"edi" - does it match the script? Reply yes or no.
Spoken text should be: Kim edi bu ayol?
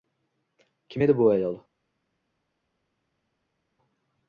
yes